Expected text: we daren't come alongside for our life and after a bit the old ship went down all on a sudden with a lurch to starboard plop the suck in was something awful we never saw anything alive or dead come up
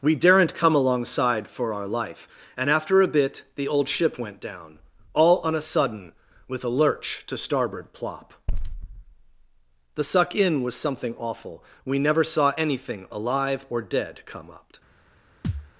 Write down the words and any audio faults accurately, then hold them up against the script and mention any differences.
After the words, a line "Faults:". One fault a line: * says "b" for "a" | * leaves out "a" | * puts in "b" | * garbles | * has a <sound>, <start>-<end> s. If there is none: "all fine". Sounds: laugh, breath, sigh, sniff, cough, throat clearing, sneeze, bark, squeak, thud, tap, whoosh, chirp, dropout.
we daren't come alongside for our life and after a bit the old ship went down all on a sudden with a lurch to starboard plop the suck in was something awful we never saw anything alive or dead come up
Faults:
* has a thud, 15.4-15.7 s